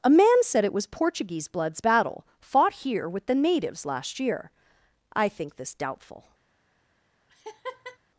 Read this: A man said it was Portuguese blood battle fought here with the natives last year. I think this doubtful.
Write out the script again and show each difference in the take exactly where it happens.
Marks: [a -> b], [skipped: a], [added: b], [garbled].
A man said it was Portuguese [blood -> bloods] battle fought here with the natives last year. I think this doubtful.